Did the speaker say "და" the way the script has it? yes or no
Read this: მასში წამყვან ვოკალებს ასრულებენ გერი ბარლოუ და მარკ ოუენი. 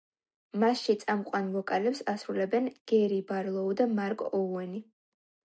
yes